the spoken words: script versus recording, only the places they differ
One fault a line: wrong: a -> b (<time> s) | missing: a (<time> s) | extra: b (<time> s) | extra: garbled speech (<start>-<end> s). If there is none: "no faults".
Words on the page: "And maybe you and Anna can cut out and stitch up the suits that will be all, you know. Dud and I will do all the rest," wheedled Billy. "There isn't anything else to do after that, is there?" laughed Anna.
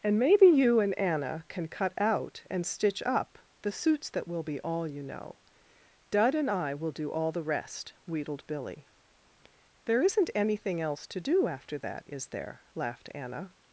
no faults